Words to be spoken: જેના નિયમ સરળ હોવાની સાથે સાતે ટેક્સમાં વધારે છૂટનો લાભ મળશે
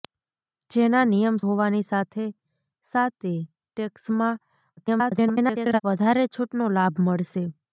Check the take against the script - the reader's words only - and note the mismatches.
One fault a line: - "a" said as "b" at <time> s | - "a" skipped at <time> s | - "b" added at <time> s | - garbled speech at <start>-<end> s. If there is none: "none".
- "સરળ" skipped at 1.4 s
- garbled speech at 4.8-5.8 s